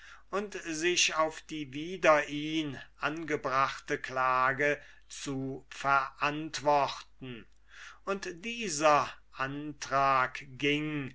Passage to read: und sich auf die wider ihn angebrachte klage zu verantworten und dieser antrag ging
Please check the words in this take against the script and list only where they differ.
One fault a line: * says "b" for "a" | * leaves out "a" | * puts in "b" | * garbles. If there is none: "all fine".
all fine